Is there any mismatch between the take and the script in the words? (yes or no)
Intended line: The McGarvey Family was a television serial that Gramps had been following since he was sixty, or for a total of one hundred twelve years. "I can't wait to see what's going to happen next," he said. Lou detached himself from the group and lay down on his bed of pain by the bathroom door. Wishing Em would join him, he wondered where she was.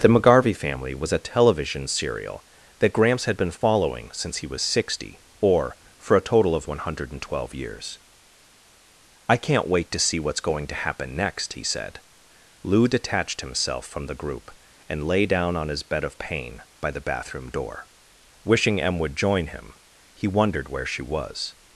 no